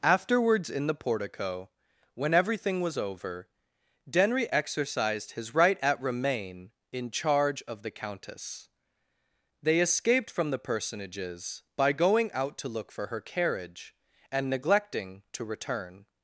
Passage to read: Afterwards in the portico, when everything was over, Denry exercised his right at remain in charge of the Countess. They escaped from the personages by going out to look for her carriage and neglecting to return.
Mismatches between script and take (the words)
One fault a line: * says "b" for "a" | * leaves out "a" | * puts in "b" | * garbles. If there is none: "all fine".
all fine